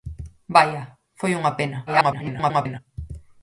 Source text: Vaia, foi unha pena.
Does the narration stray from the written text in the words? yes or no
yes